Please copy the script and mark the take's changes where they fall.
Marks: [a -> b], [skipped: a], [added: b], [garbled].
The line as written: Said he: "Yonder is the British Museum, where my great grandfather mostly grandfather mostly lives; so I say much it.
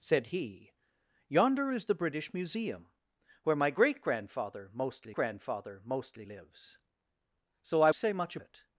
Said he: "Yonder is the British Museum, where my great grandfather mostly grandfather mostly lives; so I say much it.